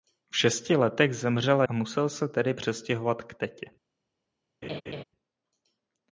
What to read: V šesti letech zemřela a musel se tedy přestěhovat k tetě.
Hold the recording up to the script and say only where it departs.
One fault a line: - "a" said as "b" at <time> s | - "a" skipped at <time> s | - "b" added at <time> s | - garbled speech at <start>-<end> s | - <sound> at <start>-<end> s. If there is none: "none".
- laugh at 4.6-5.0 s